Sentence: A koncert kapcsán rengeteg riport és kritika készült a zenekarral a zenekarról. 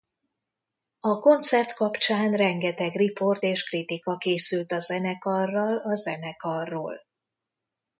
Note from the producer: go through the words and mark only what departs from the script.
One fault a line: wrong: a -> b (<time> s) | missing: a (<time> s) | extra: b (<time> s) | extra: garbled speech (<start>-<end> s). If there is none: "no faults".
no faults